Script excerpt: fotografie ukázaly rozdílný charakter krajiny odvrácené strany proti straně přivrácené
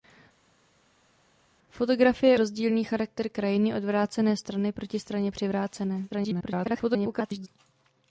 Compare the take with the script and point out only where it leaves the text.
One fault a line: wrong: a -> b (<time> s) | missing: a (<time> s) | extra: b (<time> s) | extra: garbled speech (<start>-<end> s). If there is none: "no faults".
missing: ukázaly (2.4 s)
extra: garbled speech (6.1-7.5 s)